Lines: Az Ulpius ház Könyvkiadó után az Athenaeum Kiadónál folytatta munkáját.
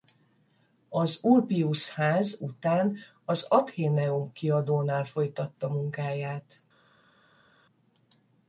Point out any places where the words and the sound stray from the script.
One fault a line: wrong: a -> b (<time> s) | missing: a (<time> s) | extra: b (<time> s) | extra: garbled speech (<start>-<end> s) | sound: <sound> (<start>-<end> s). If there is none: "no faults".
missing: Könyvkiadó (2.4 s)